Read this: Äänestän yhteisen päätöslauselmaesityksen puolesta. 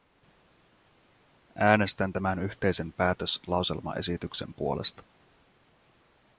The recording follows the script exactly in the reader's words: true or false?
false